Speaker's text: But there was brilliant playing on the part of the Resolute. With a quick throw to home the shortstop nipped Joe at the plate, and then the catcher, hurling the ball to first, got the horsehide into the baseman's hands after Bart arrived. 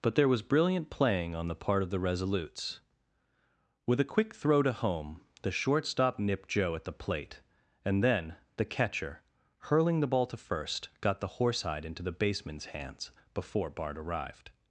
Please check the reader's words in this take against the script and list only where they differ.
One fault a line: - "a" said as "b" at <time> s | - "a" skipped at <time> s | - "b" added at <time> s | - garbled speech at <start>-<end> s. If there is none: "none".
- "Resolute" said as "Resolutes" at 2.0 s
- "after" said as "before" at 13.3 s